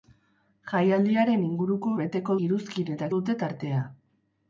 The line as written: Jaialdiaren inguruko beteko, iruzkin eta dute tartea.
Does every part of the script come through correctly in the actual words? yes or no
yes